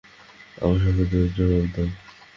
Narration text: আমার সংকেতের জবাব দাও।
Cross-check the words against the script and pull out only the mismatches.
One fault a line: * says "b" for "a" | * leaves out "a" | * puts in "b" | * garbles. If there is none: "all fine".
all fine